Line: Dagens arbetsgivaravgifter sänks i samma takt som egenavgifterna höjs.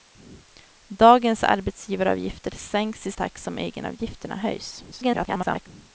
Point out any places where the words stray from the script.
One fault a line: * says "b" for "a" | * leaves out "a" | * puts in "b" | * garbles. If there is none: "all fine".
* leaves out "samma"
* garbles